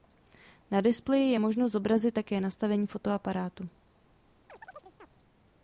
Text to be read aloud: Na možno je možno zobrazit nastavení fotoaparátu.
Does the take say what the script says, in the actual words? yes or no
no